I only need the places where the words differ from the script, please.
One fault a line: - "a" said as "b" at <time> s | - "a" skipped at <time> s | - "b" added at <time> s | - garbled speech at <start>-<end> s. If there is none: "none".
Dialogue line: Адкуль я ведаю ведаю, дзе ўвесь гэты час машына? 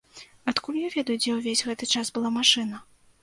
- "ведаю" skipped at 1.2 s
- "была" added at 2.2 s